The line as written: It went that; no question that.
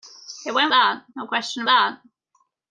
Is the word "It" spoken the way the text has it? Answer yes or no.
yes